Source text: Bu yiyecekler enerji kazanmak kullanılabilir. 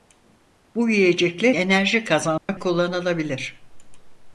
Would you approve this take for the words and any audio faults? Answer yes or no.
no